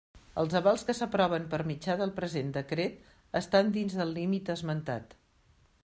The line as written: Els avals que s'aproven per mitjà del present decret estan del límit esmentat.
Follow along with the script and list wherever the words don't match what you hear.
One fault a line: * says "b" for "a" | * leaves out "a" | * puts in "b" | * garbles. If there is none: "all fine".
* puts in "dins"